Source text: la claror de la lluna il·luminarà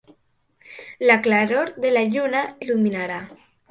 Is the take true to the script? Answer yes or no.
yes